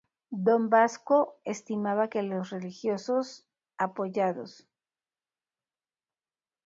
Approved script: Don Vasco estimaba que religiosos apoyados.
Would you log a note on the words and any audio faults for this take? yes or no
yes